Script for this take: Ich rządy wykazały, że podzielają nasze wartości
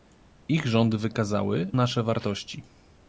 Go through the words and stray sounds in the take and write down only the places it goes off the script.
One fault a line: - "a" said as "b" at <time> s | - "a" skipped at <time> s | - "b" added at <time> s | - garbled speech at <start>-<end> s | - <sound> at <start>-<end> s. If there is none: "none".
- "że podzielają" skipped at 1.7 s